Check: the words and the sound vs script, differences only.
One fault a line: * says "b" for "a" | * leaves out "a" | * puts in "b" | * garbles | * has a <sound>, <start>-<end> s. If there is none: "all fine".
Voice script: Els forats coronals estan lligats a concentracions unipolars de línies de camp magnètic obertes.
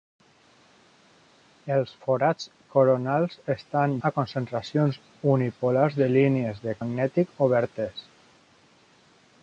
* leaves out "lligats"
* leaves out "camp"